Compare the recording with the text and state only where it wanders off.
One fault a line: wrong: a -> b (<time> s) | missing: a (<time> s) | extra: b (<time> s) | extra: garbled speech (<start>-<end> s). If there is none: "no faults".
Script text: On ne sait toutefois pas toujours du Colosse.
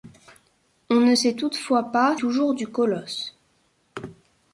no faults